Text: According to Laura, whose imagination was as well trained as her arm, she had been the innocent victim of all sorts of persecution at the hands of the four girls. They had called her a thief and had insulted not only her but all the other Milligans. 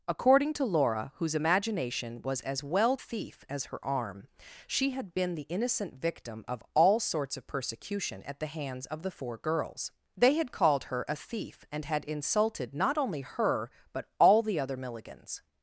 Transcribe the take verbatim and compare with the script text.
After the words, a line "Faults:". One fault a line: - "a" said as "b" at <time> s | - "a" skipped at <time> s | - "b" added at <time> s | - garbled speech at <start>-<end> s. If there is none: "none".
According to Laura, whose imagination was as well thief as her arm, she had been the innocent victim of all sorts of persecution at the hands of the four girls. They had called her a thief and had insulted not only her but all the other Milligans.
Faults:
- "trained" said as "thief" at 2.9 s